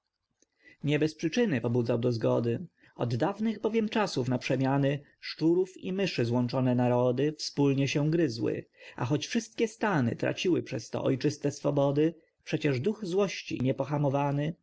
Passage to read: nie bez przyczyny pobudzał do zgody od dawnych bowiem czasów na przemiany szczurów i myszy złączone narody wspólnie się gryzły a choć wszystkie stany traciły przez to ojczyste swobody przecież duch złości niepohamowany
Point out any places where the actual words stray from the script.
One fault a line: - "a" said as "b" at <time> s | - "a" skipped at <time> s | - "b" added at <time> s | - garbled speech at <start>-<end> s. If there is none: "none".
none